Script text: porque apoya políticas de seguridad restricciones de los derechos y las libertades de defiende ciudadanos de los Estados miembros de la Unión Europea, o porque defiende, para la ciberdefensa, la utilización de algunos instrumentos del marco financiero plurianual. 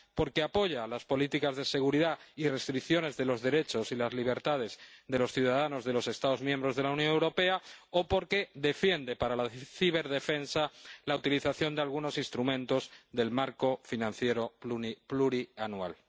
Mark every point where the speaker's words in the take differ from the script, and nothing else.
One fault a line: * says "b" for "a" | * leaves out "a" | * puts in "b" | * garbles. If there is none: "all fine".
* puts in "las"
* puts in "y"
* says "los" for "defiende"